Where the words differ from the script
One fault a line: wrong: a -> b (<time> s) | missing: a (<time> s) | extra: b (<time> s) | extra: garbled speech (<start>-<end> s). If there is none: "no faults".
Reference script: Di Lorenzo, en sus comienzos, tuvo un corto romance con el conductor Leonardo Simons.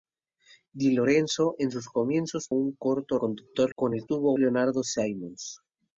missing: tuvo (2.5 s)
wrong: romance -> conductor (3.2 s)
wrong: conductor -> tuvo (4.1 s)